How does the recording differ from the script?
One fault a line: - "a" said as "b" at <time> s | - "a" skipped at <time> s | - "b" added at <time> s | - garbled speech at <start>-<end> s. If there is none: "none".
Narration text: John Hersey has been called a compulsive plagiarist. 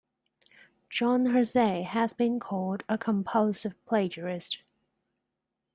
none